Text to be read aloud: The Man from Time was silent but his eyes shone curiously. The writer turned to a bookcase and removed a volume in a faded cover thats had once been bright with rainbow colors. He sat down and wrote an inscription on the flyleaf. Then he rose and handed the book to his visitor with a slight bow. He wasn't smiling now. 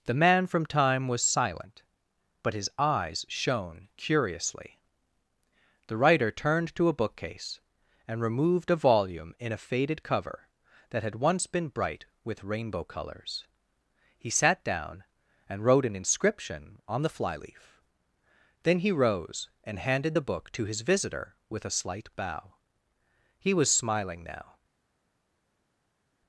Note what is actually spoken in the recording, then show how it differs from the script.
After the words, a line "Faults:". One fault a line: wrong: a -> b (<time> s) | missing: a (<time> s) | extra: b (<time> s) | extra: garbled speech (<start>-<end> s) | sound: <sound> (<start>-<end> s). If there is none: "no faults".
The Man from Time was silent but his eyes shone curiously. The writer turned to a bookcase and removed a volume in a faded cover that had once been bright with rainbow colors. He sat down and wrote an inscription on the flyleaf. Then he rose and handed the book to his visitor with a slight bow. He was smiling now.
Faults:
wrong: thats -> that (10.9 s)
wrong: wasn't -> was (23.5 s)